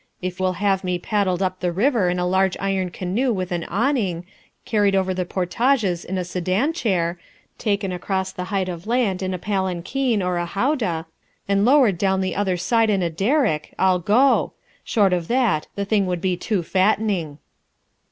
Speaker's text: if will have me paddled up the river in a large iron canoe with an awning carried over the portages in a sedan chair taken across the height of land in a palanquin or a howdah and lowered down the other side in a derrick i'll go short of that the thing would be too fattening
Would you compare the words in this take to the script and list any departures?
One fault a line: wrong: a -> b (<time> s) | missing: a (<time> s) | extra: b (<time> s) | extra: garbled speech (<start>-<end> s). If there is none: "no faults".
no faults